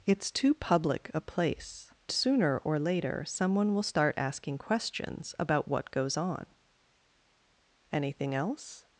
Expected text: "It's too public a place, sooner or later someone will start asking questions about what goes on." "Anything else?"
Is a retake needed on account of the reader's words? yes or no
no